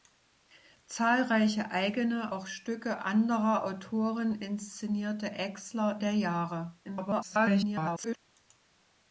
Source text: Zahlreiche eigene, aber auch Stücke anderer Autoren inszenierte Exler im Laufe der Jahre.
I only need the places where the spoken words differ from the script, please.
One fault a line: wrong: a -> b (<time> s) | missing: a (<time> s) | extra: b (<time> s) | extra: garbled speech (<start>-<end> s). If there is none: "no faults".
missing: aber (2.3 s)
missing: im Laufe (6.0 s)
extra: garbled speech (6.8-8.2 s)